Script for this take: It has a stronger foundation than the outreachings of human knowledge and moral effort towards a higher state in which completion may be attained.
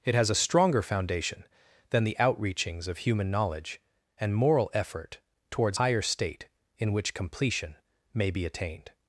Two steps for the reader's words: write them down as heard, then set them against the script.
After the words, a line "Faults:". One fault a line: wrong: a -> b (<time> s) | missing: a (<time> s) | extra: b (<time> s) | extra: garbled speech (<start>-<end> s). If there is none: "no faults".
It has a stronger foundation than the outreachings of human knowledge and moral effort towards higher state in which completion may be attained.
Faults:
missing: a (5.8 s)